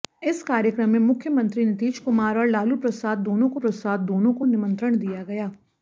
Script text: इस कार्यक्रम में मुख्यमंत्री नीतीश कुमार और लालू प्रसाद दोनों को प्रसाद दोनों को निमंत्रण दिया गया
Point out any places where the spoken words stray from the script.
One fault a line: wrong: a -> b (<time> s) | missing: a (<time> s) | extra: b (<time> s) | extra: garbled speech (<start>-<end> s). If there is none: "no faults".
no faults